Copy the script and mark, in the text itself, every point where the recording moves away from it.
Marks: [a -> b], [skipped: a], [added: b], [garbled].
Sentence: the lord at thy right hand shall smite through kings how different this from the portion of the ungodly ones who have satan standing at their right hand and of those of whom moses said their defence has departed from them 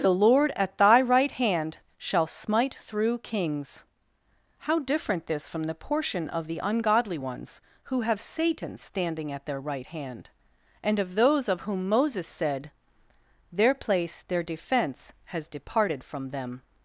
the lord at thy right hand shall smite through kings how different this from the portion of the ungodly ones who have satan standing at their right hand and of those of whom moses said their [defence -> place their defense] has departed from them